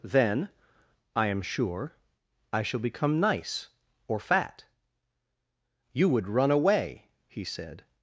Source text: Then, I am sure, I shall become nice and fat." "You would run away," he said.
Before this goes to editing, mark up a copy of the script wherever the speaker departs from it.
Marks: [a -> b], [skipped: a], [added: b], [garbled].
Then, I am sure, I shall become nice [and -> or] fat." "You would run away," he said.